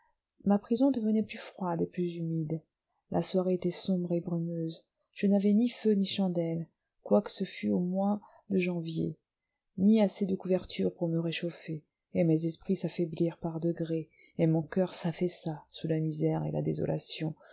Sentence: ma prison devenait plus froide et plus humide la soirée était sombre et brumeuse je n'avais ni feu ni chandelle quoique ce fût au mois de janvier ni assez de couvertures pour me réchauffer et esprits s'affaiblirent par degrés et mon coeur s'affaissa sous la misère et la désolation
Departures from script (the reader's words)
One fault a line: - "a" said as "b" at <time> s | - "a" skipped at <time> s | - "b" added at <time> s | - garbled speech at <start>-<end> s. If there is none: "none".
- "mes" added at 12.2 s